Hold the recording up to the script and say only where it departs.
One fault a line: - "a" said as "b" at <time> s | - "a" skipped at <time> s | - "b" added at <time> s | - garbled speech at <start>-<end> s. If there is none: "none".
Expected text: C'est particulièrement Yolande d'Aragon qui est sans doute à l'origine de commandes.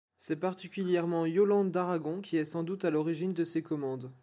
- "ces" added at 3.4 s